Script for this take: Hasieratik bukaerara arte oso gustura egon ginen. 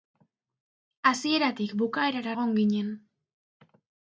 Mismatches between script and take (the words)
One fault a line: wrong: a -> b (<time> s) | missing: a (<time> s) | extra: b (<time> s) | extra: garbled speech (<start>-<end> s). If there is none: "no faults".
missing: arte oso gustura (2.3 s)